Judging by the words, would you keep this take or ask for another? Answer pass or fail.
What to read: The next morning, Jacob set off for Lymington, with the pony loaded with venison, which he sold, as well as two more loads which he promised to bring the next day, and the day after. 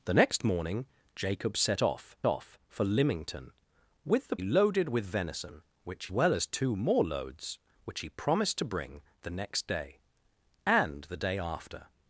fail